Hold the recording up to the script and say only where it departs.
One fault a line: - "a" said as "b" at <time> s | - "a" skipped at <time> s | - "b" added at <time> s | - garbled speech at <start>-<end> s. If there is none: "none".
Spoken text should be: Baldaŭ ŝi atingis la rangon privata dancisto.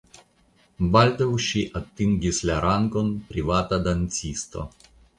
none